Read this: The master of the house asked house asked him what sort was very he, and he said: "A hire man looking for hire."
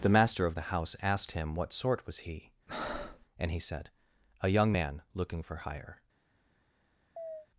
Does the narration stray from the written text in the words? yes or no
yes